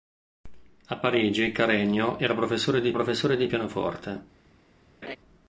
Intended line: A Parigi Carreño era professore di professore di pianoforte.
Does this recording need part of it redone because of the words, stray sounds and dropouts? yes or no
yes